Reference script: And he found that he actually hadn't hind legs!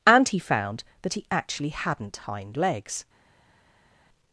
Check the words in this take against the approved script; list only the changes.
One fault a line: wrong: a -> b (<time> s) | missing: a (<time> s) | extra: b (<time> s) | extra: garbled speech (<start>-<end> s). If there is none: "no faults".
no faults